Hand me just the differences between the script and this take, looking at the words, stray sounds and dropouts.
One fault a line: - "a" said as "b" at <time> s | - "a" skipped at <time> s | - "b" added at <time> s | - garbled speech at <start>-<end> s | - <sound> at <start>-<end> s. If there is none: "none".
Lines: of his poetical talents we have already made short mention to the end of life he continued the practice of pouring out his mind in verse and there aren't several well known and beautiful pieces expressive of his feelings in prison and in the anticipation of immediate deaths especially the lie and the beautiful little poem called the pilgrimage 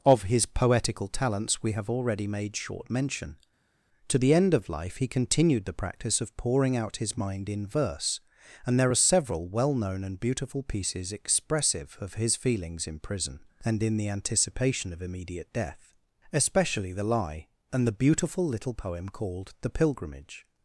- "aren't" said as "are" at 8.9 s
- "deaths" said as "death" at 15.5 s